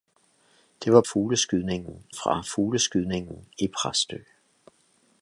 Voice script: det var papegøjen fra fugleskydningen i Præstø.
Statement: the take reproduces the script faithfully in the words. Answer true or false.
false